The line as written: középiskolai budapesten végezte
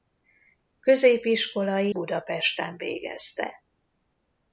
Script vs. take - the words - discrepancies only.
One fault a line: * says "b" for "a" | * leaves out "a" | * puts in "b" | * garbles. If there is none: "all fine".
all fine